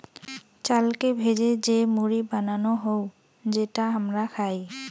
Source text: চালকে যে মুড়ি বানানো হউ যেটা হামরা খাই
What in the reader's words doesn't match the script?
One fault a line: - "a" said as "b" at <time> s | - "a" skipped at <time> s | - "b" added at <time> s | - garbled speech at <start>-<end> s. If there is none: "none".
- "ভেজে" added at 1.2 s